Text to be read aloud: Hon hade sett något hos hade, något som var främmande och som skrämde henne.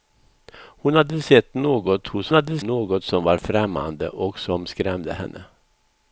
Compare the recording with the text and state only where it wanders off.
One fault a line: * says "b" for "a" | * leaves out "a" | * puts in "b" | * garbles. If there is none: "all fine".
all fine